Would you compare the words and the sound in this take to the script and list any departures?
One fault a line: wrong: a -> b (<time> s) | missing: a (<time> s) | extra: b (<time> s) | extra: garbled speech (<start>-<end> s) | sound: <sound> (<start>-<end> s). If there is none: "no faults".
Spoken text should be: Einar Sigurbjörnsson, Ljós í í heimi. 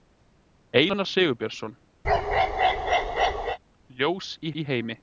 sound: bark (2.0-3.6 s)